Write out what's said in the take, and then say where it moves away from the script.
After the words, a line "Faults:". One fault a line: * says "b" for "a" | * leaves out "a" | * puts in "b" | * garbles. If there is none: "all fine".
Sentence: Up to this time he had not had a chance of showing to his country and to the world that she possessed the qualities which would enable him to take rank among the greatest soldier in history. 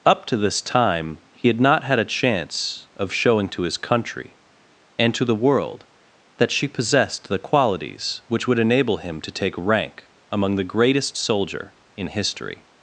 Up to this time he had not had a chance of showing to his country and to the world that she possessed the qualities which would enable him to take rank among the greatest soldier in history.
Faults:
all fine